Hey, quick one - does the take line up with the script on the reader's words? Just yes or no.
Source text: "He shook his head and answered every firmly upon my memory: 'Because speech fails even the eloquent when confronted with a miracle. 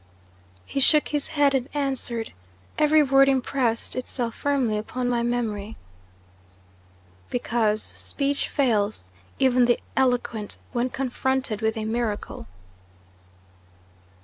no